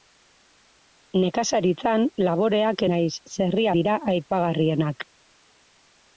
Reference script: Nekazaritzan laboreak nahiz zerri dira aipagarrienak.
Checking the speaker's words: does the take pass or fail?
pass